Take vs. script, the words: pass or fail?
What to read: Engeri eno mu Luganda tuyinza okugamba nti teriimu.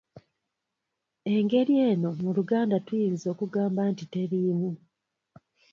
pass